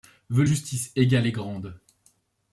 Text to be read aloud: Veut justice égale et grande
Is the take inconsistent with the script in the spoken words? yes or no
no